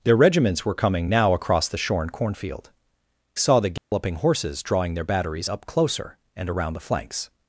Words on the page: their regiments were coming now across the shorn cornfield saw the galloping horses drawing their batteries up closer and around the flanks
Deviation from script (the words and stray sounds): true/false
true